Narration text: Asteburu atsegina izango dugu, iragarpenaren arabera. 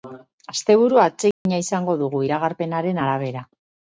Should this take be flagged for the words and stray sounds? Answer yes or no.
yes